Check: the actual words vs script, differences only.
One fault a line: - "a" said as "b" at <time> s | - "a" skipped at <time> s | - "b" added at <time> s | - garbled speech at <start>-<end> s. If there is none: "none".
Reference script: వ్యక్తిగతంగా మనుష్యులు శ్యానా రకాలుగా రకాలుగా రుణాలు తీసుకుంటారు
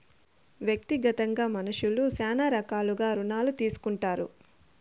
- "రకాలుగా" skipped at 3.1 s